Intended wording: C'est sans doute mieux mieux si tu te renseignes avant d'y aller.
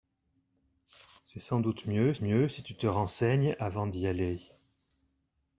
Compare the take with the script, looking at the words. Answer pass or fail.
pass